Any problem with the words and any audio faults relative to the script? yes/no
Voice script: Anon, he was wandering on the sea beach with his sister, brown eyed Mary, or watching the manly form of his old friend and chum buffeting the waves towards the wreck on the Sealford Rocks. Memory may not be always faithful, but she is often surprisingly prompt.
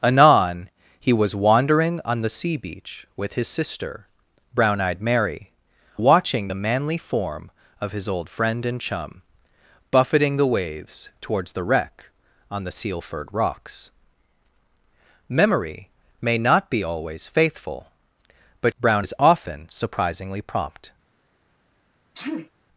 yes